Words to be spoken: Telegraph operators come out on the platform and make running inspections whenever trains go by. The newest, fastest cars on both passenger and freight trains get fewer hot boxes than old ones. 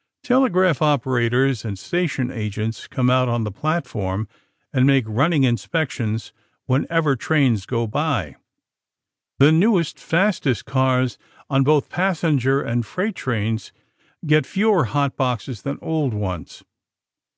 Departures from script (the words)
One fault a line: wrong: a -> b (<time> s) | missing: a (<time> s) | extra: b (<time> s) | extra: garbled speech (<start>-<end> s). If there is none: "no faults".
extra: and station agents (1.6 s)